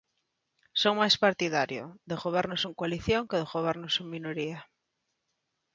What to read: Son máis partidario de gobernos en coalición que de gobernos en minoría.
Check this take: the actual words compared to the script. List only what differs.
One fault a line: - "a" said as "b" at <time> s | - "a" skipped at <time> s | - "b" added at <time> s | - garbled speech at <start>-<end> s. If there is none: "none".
none